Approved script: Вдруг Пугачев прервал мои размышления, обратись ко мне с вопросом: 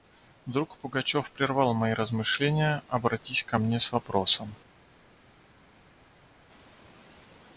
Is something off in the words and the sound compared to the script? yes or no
no